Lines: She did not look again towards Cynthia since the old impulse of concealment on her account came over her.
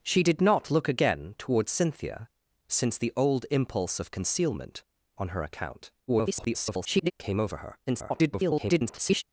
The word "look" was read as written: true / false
true